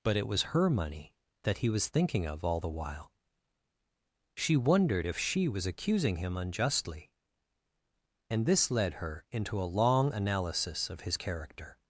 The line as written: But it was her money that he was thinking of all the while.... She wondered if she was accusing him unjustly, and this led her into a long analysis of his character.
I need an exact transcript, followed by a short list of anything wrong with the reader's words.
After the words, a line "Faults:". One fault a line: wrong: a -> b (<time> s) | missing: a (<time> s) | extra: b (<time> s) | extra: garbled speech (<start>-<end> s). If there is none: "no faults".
But it was her money that he was thinking of all the while.... She wondered if she was accusing him unjustly, and this led her into a long analysis of his character.
Faults:
no faults